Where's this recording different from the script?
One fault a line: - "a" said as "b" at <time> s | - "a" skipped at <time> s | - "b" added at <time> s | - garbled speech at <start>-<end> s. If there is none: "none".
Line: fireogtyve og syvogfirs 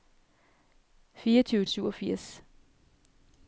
none